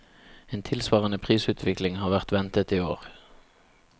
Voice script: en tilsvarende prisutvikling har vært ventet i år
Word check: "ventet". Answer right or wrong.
right